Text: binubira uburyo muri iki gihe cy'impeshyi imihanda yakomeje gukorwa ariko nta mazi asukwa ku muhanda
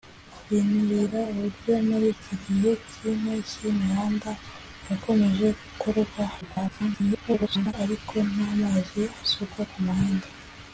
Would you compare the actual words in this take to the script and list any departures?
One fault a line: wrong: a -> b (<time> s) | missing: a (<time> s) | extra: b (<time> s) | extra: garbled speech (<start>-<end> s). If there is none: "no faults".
extra: garbled speech (6.4-7.7 s)